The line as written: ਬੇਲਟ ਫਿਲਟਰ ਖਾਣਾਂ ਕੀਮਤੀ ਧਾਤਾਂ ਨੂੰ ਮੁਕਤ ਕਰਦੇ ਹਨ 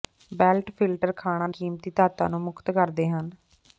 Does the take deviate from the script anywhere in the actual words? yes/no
no